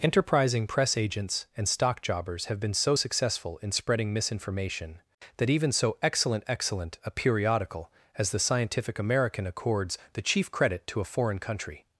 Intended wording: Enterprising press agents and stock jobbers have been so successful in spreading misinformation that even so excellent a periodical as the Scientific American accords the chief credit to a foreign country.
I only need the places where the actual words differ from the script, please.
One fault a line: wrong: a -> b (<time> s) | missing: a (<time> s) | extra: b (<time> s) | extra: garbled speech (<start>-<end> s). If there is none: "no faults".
extra: excellent (6.5 s)